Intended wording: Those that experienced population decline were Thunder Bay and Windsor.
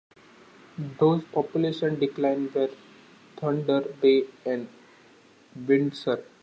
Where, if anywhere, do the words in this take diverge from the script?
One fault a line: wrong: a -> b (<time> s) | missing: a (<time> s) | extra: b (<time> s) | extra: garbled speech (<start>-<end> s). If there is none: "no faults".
missing: that experienced (1.2 s)